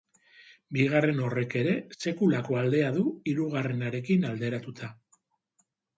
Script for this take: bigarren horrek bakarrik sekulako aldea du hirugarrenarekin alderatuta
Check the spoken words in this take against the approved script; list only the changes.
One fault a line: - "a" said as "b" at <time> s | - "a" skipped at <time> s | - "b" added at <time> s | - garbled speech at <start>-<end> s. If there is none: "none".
- "bakarrik" said as "ere" at 1.6 s